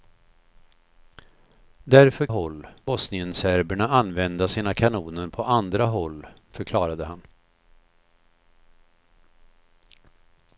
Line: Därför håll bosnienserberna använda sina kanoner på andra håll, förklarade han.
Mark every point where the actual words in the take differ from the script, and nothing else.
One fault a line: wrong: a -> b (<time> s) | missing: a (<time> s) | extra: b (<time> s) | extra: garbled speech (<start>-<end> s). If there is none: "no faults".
no faults